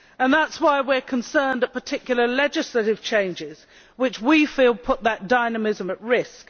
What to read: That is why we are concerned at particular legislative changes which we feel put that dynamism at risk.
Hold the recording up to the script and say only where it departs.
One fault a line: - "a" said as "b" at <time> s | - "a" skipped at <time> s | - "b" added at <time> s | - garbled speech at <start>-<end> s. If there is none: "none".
none